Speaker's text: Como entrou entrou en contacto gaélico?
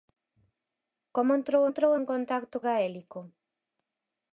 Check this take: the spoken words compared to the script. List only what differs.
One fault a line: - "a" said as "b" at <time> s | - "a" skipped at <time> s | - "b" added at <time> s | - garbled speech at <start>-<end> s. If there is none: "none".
none